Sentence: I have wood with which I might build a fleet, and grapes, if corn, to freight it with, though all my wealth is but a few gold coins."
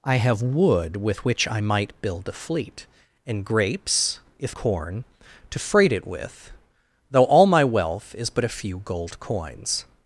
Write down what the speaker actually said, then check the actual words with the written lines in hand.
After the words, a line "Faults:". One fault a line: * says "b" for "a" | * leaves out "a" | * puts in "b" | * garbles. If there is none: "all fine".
I have wood with which I might build a fleet, and grapes, if corn, to freight it with, though all my wealth is but a few gold coins."
Faults:
all fine